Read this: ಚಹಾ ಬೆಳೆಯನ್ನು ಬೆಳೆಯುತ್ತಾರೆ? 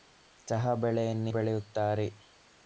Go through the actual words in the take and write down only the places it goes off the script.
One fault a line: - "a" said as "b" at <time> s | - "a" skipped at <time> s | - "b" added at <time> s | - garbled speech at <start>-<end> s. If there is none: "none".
none